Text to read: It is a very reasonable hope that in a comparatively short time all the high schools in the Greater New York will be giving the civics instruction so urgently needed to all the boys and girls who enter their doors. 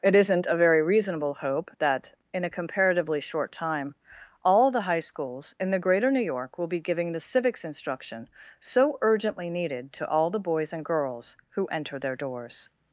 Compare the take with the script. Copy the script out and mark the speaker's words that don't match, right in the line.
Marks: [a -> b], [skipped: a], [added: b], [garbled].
It [is -> isn't] a very reasonable hope that in a comparatively short time all the high schools in the Greater New York will be giving the civics instruction so urgently needed to all the boys and girls who enter their doors.